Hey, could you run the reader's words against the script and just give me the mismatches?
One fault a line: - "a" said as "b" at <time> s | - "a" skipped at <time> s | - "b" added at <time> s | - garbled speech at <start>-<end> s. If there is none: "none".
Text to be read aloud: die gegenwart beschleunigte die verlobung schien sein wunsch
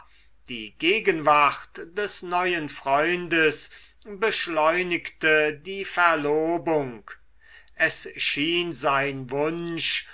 - "des neuen freundes" added at 1.9 s
- "es" added at 7.8 s